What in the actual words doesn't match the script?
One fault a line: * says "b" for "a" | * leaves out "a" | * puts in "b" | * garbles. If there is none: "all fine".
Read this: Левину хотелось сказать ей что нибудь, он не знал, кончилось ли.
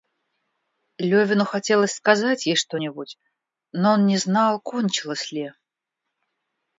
* puts in "но"